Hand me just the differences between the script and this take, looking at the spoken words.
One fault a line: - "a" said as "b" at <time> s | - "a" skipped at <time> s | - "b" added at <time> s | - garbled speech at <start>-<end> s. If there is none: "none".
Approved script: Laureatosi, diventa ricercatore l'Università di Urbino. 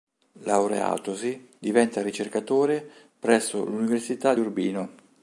- "presso" added at 3.2 s